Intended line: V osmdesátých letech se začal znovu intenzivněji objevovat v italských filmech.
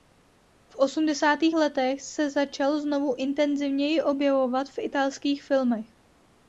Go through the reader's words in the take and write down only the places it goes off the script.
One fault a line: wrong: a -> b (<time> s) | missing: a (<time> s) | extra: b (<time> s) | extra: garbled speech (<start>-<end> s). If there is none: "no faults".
no faults